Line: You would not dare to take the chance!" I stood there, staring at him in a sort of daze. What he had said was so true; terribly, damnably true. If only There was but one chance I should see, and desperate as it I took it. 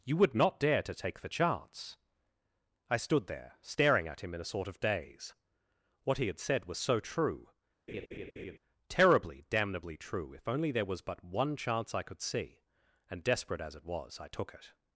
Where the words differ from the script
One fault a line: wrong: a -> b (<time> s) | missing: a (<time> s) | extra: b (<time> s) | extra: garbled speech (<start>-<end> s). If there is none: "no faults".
wrong: should -> could (12.0 s)
extra: was (13.8 s)